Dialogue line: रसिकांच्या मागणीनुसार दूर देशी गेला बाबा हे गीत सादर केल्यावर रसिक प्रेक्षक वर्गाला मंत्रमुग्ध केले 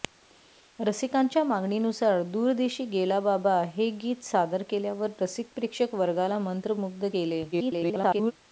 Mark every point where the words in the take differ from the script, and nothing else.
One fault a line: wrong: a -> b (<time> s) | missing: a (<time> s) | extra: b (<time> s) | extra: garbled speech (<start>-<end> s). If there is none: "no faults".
extra: garbled speech (7.5-8.3 s)